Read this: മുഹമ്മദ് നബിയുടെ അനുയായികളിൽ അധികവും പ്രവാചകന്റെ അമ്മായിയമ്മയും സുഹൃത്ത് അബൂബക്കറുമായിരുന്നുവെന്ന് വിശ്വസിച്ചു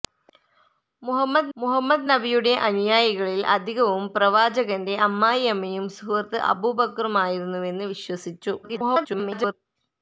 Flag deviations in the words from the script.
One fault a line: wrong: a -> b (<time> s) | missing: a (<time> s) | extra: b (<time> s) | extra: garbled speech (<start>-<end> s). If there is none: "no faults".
extra: മുഹമ്മദ് (1.6 s)
extra: garbled speech (8.6-9.5 s)